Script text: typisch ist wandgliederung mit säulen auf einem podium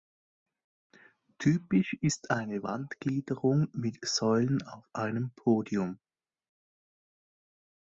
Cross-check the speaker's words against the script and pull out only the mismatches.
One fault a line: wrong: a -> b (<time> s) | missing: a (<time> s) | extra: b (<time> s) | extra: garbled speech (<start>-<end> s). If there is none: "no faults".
extra: eine (2.3 s)